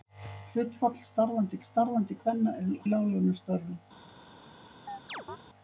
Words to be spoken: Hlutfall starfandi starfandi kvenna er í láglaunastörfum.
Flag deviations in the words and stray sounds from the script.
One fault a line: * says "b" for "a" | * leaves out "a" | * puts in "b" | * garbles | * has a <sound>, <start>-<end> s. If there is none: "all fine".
* has a chirp, 4.9-5.4 s